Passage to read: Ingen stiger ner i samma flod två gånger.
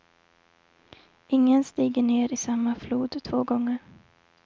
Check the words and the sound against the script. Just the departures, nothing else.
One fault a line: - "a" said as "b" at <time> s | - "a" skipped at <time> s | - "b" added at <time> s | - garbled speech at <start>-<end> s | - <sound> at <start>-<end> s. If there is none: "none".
none